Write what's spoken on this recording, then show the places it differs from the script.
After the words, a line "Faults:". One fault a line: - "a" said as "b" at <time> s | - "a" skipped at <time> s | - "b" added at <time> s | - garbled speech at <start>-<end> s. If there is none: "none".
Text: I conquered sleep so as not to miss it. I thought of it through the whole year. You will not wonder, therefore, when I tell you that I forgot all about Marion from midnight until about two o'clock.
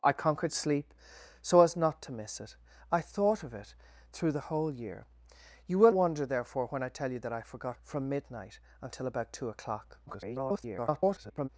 I conquered sleep so as not to miss it. I thought of it through the whole year. You will wonder, therefore, when I tell you that I forgot from midnight until about two o'clock. [garbled]
Faults:
- "not" skipped at 5.9 s
- "all about Marion" skipped at 7.8 s
- garbled speech at 10.1-11.5 s